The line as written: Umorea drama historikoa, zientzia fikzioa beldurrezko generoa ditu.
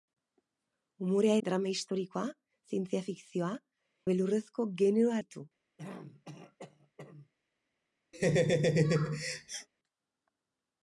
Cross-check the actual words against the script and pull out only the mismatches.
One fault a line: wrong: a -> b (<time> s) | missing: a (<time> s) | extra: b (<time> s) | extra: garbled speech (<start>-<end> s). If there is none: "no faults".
no faults